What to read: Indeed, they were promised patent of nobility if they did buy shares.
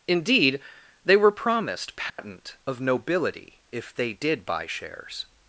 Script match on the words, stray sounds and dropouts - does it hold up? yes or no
no